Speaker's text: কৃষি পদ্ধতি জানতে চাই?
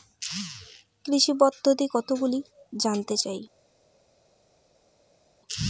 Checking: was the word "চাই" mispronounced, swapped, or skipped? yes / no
no